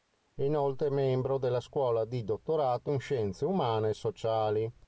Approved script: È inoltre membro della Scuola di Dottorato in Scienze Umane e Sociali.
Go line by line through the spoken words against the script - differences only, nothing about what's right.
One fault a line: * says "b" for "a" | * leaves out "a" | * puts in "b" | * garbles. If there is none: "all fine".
all fine